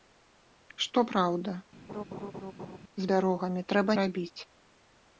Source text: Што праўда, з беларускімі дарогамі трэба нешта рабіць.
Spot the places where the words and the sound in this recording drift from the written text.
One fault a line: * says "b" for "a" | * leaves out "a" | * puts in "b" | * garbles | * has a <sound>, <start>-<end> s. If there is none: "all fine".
* has a laugh, 1.9-2.8 s
* leaves out "беларускімі"
* leaves out "нешта"